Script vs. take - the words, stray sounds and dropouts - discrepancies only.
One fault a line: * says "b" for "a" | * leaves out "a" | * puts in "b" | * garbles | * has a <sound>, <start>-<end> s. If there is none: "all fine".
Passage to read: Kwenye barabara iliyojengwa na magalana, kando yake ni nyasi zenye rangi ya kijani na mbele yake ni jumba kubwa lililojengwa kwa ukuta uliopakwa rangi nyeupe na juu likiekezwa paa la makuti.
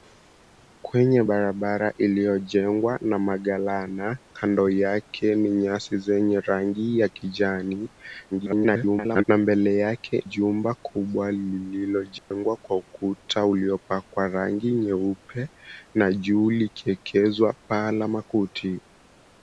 * garbles
* leaves out "ni"
* has a dropout, 12.2-12.3 s